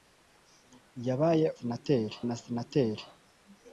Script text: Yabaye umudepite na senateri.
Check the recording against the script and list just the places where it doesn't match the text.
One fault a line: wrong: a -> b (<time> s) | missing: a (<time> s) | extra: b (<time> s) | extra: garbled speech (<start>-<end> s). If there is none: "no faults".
wrong: umudepite -> senateri (1.6 s)